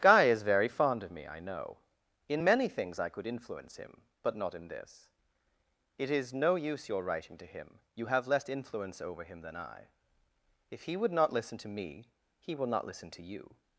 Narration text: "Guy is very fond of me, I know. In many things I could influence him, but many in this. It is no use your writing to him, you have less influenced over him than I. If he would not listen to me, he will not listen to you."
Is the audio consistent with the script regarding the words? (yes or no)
no